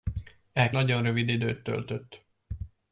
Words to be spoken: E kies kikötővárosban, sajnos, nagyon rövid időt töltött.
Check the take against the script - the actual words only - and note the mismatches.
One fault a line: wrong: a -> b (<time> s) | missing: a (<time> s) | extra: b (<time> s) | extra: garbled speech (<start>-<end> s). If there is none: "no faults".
missing: kies kikötővárosban sajnos (0.7 s)